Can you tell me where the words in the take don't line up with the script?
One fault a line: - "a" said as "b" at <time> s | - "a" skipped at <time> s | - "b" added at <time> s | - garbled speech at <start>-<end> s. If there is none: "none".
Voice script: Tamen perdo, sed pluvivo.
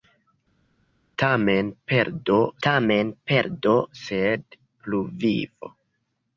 - "tamen perdo" added at 2.7 s